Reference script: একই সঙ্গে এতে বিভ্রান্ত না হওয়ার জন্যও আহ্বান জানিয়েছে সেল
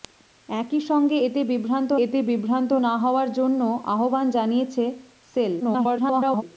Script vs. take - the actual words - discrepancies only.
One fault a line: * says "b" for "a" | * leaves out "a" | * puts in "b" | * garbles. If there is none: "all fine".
* puts in "এতে বিভ্রান্ত"
* garbles